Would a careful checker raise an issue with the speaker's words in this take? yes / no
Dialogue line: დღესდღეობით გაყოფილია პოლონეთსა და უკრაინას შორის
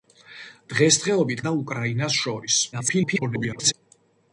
yes